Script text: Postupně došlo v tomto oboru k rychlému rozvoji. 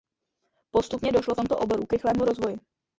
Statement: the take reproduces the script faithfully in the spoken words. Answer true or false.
true